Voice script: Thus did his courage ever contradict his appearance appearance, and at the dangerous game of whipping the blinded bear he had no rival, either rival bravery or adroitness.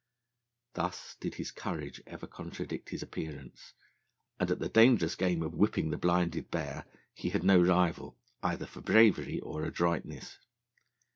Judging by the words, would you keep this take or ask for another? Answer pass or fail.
fail